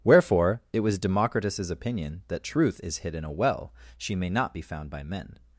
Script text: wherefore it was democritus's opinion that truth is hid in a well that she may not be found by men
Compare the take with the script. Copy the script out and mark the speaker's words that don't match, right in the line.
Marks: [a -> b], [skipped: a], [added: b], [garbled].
wherefore it was democritus's opinion that truth is hid in a well [skipped: that] she may not be found by men